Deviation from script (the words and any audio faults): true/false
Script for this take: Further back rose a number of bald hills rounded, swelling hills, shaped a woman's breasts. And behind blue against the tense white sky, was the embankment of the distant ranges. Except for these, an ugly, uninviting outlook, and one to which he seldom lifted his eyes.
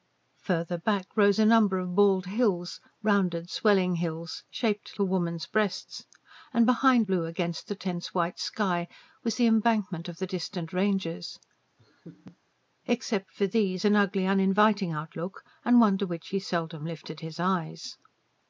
true